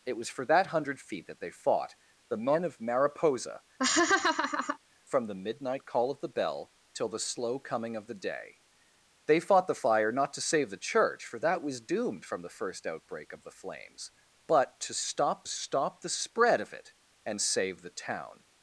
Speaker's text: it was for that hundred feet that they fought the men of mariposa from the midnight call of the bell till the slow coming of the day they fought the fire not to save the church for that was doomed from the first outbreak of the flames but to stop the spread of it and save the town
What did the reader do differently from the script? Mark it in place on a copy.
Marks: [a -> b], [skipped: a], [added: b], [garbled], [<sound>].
it was for that hundred feet that they fought the men of mariposa [laugh] from the midnight call of the bell till the slow coming of the day they fought the fire not to save the church for that was doomed from the first outbreak of the flames but to stop [added: stop] the spread of it and save the town